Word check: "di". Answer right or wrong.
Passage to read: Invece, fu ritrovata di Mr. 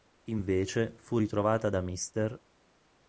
wrong